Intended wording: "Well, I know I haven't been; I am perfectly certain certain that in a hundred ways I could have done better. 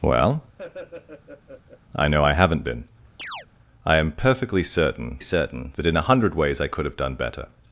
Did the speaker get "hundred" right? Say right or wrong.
right